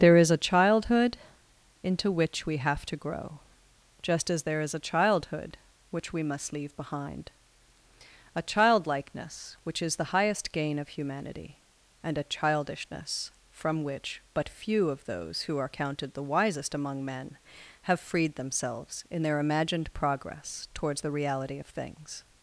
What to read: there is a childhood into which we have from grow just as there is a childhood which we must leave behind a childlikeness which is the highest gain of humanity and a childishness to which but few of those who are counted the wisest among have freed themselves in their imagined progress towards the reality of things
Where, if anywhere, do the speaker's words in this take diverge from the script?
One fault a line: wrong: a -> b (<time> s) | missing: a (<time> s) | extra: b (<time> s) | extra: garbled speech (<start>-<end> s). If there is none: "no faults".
wrong: from -> to (2.9 s)
wrong: to -> from (13.5 s)
extra: men (17.1 s)